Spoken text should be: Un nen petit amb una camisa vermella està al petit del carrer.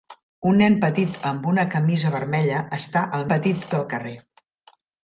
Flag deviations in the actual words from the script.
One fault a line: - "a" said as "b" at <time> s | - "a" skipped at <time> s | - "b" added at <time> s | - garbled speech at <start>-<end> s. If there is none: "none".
none